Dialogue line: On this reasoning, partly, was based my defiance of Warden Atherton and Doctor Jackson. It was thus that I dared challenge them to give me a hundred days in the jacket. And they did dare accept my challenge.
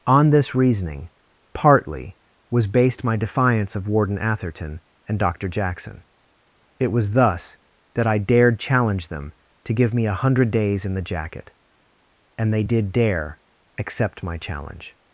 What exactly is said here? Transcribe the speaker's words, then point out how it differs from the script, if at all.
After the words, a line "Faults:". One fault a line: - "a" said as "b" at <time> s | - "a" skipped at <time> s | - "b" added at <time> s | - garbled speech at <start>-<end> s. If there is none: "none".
On this reasoning, partly, was based my defiance of Warden Atherton and Doctor Jackson. It was thus that I dared challenge them to give me a hundred days in the jacket. And they did dare accept my challenge.
Faults:
none